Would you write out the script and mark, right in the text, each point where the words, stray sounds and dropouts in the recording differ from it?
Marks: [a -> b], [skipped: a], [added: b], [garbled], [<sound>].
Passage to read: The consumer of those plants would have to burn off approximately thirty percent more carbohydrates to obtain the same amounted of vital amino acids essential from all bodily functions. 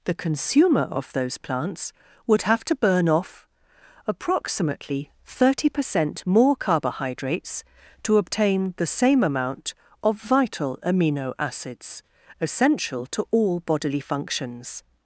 The consumer of those plants would have to burn off approximately thirty percent more carbohydrates to obtain the same [amounted -> amount] of vital amino acids essential [from -> to] all bodily functions.